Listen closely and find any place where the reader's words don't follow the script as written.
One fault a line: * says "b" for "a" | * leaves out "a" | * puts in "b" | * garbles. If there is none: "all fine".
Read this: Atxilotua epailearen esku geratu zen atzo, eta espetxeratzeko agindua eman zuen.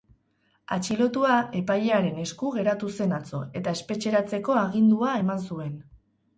all fine